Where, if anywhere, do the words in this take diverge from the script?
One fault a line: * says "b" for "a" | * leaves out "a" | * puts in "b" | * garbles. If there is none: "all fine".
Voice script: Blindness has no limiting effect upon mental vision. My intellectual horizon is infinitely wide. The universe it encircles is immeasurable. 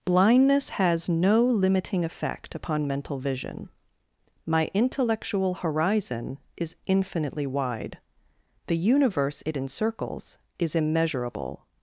all fine